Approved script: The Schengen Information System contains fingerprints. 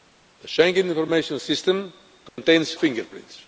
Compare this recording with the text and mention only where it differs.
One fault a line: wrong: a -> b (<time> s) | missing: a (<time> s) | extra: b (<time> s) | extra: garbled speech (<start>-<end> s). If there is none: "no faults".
no faults